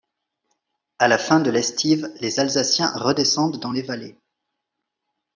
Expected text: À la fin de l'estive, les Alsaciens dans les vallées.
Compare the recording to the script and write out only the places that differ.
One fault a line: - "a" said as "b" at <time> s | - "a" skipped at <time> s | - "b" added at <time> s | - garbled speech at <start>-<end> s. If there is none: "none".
- "redescendent" added at 3.0 s